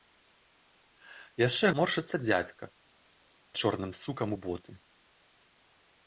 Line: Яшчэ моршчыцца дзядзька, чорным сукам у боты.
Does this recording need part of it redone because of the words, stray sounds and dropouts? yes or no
no